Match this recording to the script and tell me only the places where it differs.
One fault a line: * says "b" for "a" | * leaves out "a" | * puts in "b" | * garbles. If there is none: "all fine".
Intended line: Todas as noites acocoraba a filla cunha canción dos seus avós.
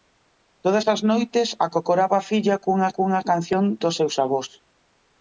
* puts in "cunha"